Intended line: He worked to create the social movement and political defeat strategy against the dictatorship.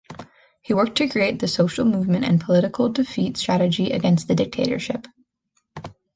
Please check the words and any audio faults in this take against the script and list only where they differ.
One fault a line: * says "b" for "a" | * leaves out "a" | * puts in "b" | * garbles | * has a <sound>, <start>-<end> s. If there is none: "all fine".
all fine